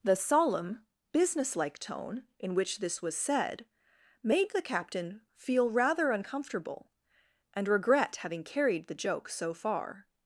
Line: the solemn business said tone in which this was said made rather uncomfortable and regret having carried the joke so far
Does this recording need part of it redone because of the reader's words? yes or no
yes